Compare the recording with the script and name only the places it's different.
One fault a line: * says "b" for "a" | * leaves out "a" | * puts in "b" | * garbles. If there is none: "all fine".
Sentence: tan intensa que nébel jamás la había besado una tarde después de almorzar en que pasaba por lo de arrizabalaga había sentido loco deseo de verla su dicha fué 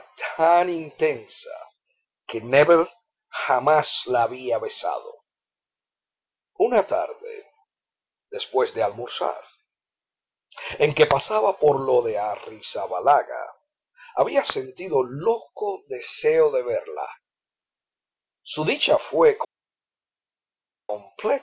all fine